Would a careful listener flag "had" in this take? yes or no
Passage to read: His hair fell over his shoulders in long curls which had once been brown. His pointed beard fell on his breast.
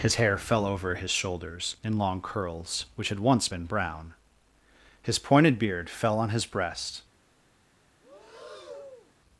no